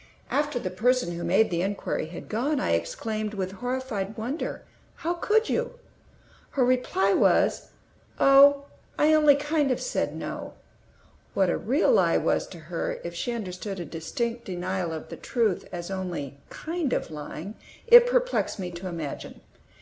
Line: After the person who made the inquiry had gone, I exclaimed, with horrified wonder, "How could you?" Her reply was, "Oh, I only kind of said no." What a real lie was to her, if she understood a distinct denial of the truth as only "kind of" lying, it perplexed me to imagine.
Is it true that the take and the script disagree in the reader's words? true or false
false